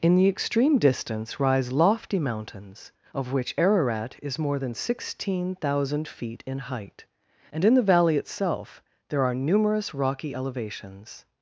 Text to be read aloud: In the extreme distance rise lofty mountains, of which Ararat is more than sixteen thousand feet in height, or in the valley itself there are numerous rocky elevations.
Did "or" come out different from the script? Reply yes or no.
yes